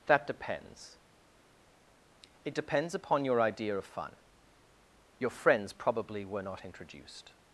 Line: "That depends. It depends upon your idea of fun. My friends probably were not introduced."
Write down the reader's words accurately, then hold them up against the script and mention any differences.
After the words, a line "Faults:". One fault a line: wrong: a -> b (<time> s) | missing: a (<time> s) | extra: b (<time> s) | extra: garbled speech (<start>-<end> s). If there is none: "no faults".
"That depends. It depends upon your idea of fun. Your friends probably were not introduced."
Faults:
wrong: My -> Your (5.2 s)